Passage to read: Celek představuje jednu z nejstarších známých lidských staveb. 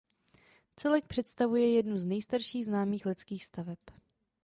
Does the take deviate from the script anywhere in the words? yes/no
no